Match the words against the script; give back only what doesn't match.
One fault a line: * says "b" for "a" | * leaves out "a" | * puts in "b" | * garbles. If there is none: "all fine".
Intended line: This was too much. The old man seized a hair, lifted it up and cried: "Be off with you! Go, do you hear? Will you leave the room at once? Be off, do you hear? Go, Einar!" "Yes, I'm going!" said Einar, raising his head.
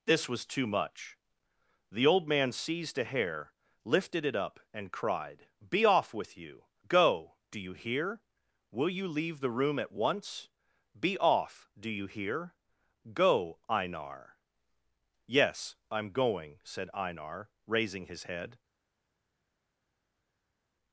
all fine